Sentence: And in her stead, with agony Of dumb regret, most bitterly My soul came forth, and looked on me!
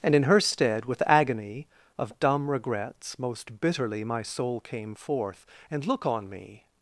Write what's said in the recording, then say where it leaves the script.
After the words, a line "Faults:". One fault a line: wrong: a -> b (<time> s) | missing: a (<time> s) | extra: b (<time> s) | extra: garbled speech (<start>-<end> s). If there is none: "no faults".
And in her stead, with agony Of dumb regrets, most bitterly My soul came forth, and look on me!
Faults:
wrong: regret -> regrets (2.5 s)
wrong: looked -> look (5.9 s)